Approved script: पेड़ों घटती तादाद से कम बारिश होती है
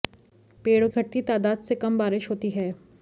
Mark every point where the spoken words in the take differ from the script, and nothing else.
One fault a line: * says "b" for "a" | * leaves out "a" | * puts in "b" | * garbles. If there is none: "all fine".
all fine